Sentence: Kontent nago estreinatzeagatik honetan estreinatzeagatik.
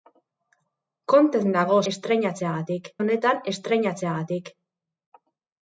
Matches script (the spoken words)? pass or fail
pass